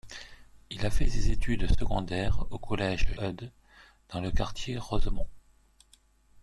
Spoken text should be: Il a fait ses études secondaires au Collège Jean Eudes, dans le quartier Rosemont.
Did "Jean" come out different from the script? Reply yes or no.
yes